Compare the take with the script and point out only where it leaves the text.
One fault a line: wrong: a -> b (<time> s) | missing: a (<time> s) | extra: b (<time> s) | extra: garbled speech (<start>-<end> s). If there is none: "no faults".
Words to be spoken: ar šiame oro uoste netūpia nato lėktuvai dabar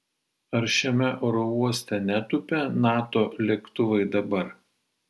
no faults